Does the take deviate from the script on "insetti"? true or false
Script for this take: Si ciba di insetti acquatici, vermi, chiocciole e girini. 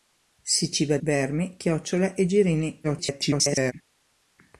true